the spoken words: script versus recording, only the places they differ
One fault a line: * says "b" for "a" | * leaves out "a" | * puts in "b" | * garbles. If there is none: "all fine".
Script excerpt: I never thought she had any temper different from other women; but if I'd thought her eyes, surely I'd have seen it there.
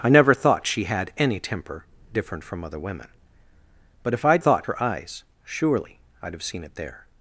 all fine